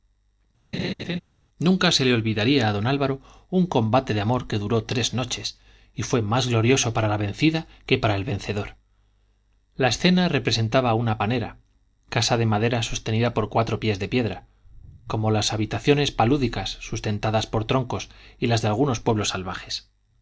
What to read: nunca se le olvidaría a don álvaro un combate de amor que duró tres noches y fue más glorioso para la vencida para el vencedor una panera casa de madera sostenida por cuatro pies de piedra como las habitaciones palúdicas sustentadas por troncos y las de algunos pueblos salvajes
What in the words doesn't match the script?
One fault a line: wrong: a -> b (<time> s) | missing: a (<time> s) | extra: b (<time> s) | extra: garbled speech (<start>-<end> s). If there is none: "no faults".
extra: que (7.8 s)
extra: la escena representaba (9.8 s)